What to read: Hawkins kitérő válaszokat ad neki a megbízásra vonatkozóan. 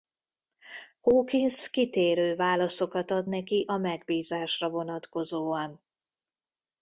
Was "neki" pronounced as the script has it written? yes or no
yes